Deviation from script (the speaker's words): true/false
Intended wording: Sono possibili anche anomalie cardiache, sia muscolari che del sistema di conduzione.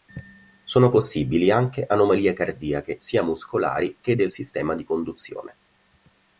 false